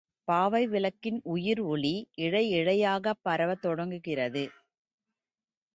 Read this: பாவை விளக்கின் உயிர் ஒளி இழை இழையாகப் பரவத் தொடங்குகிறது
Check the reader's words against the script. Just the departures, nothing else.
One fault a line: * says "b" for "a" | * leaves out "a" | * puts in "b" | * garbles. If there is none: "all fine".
all fine